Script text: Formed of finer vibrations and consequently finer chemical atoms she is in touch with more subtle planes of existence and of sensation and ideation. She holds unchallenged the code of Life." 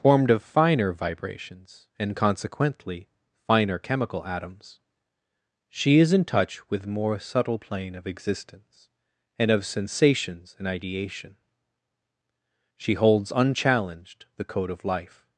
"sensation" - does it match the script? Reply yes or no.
no